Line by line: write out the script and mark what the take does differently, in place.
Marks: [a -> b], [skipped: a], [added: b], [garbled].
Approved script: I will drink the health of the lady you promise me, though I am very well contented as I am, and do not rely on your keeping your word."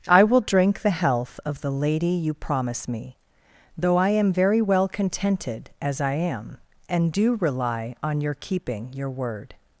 I will drink the health of the lady you promise me, though I am very well contented as I am, and do [skipped: not] rely on your keeping your word."